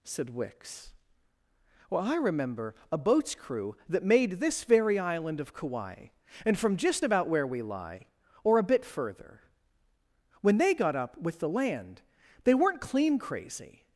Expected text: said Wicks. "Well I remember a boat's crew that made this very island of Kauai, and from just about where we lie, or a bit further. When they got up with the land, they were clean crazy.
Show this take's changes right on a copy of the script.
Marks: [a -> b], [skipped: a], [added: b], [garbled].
said Wicks. "Well I remember a boat's crew that made this very island of Kauai, and from just about where we lie, or a bit further. When they got up with the land, they [were -> weren't] clean crazy.